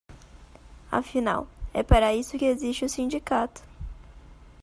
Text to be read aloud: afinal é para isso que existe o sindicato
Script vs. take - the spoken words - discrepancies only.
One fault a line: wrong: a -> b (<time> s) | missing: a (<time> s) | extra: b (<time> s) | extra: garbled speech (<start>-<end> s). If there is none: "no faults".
no faults